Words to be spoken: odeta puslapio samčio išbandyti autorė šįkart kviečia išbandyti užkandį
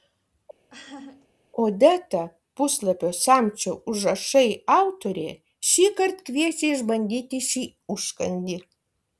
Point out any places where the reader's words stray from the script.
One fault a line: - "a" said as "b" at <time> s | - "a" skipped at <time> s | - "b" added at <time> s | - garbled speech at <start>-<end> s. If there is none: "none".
- "išbandyti" said as "užrašai" at 3.9 s
- "šį" added at 7.5 s